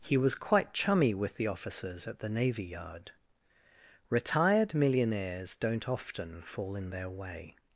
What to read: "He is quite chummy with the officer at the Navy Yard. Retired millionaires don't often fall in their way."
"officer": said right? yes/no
no